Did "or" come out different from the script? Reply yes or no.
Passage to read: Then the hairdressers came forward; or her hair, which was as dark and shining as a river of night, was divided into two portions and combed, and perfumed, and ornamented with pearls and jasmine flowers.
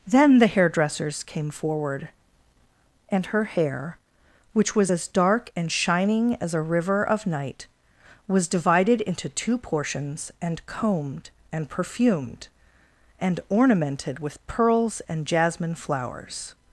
yes